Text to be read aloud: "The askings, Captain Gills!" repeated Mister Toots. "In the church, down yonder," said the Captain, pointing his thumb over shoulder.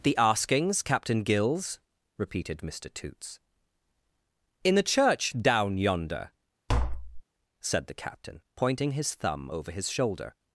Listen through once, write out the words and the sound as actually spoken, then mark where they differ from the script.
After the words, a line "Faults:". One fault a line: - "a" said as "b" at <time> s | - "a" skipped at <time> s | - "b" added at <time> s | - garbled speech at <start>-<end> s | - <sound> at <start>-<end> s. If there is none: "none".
"The askings, Captain Gills!" repeated Mister Toots. "In the church, down yonder," said the Captain, pointing his thumb over his shoulder.
Faults:
- tap at 6.7-7.2 s
- "his" added at 9.7 s